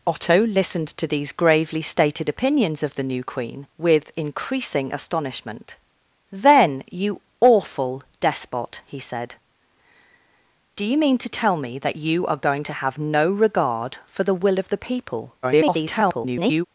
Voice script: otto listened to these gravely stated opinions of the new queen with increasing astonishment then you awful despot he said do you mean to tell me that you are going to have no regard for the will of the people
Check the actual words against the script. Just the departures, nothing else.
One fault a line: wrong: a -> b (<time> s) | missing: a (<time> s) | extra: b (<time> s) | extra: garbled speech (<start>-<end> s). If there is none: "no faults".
extra: garbled speech (15.4-16.7 s)